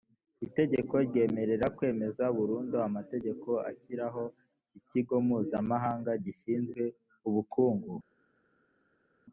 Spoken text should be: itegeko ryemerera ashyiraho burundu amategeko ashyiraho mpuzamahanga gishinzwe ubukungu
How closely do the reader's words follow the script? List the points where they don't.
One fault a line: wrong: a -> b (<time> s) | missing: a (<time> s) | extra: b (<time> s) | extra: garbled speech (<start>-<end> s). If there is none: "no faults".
wrong: ashyiraho -> kwemeza (1.8 s)
extra: ikigo (4.8 s)